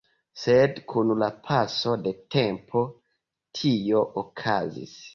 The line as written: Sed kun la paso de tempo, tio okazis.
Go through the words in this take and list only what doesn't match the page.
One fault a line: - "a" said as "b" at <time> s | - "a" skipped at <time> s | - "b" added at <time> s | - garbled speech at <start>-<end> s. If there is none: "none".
none